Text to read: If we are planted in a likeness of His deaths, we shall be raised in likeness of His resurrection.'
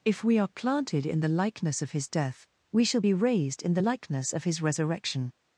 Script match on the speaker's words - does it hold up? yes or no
no